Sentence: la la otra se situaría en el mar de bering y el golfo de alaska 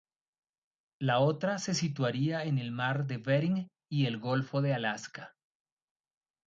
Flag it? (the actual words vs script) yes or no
yes